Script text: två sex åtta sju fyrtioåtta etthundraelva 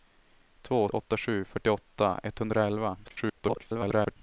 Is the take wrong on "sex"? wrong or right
wrong